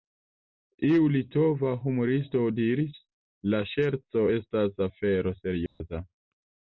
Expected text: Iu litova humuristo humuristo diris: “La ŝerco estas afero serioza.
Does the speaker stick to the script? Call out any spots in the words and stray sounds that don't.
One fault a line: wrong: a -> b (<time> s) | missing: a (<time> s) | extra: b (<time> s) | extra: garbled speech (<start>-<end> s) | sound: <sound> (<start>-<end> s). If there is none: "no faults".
missing: humuristo (2.4 s)
sound: dropout (5.7-5.8 s)